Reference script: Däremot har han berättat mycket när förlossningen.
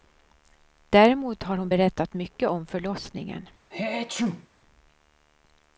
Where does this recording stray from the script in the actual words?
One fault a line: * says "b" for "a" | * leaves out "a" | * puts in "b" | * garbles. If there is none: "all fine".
* says "hon" for "han"
* says "om" for "när"